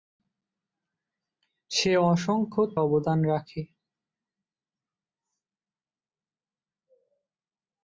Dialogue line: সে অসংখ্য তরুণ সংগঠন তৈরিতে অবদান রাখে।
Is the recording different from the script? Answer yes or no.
yes